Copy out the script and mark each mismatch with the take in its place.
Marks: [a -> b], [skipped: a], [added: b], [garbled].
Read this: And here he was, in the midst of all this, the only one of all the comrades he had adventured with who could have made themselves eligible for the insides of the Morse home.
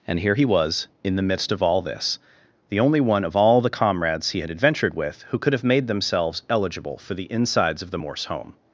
And here he was, in the midst of all this, the only one of all the comrades he had adventured with who could have made themselves eligible for the insides of the Morse home.